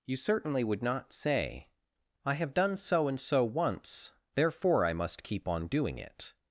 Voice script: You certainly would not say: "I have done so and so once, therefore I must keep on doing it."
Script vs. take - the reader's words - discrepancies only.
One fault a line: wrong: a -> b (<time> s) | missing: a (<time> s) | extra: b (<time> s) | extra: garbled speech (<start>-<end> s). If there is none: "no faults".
no faults